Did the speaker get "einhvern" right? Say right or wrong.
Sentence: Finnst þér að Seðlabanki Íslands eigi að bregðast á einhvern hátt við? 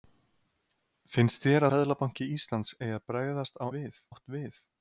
wrong